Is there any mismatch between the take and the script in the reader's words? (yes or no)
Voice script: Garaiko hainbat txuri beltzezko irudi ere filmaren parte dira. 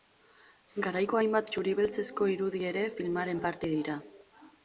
no